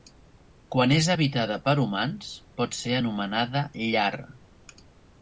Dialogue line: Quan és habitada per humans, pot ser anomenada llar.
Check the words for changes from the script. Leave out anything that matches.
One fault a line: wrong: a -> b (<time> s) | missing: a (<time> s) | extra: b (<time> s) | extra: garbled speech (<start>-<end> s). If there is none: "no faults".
no faults